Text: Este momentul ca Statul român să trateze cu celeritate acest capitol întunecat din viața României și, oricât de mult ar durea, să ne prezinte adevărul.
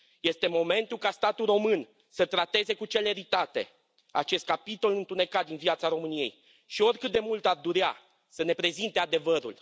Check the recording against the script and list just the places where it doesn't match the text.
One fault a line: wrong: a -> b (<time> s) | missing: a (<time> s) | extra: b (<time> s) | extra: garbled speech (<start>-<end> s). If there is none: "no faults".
no faults